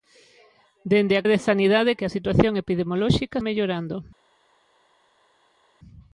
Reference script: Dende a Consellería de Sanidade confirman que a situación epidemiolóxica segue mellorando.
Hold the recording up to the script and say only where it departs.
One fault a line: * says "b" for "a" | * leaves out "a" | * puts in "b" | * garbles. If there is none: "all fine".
* leaves out "Consellería"
* leaves out "confirman"
* leaves out "segue"